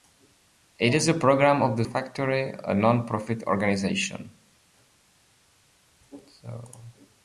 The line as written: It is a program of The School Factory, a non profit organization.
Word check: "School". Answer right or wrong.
wrong